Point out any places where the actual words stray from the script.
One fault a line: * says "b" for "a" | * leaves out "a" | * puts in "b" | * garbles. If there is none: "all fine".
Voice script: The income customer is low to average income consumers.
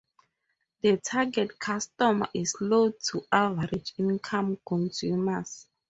* says "target" for "income"